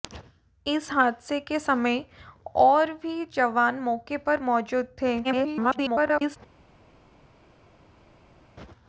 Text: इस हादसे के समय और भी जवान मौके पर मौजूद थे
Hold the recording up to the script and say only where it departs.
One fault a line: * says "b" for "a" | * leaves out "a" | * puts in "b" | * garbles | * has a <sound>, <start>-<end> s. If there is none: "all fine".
* garbles